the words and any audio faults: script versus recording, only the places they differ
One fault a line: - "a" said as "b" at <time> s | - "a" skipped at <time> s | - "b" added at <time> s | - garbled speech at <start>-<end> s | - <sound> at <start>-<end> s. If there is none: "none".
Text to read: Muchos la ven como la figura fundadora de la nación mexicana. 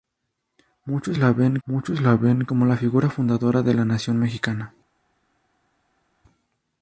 - "muchos la ven" added at 1.6 s